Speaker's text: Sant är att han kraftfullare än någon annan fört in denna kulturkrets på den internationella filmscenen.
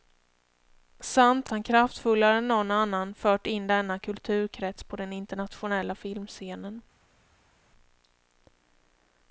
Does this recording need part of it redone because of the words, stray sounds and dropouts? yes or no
yes